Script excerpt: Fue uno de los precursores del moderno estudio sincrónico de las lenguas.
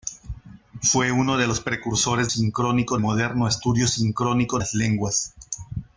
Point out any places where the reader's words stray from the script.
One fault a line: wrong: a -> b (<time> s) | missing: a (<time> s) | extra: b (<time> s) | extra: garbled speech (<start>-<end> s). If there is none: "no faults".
wrong: del -> sincrónico (2.3 s)
missing: de (4.6 s)